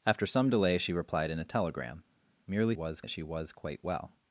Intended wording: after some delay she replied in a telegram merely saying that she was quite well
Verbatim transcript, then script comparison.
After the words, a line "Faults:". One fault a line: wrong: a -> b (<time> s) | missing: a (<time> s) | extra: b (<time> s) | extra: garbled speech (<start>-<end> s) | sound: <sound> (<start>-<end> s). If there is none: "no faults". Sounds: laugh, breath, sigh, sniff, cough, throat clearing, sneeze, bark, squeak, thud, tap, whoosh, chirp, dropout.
after some delay she replied in a telegram merely was that she was quite well
Faults:
wrong: saying -> was (2.7 s)